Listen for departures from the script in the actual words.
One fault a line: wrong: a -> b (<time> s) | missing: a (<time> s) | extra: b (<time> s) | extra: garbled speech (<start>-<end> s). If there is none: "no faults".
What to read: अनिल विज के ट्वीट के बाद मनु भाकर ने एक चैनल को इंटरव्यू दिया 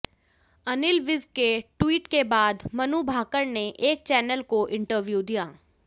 no faults